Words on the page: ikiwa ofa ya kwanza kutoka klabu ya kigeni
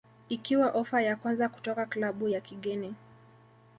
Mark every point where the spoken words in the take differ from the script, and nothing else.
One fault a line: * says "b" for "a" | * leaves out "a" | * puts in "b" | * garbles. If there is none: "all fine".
all fine